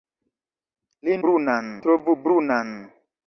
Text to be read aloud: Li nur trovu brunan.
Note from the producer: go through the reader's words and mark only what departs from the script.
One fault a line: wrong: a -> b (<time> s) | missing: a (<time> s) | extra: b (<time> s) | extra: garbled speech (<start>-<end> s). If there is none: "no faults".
wrong: nur -> brunan (1.3 s)